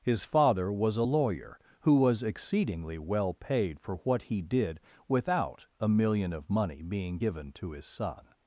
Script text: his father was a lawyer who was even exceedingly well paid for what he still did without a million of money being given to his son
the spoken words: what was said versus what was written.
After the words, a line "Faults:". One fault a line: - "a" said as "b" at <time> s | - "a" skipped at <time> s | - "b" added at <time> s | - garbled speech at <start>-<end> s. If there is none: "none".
his father was a lawyer who was exceedingly well paid for what he did without a million of money being given to his son
Faults:
- "even" skipped at 2.2 s
- "still" skipped at 4.4 s